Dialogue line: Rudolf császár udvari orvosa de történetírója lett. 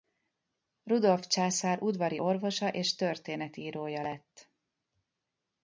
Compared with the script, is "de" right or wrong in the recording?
wrong